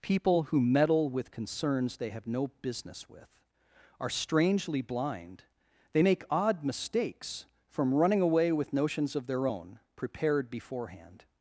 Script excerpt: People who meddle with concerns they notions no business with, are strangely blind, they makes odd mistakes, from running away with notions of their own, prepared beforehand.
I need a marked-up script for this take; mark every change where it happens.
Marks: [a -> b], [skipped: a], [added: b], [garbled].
People who meddle with concerns they [notions -> have] no business with, are strangely blind, they [makes -> make] odd mistakes, from running away with notions of their own, prepared beforehand.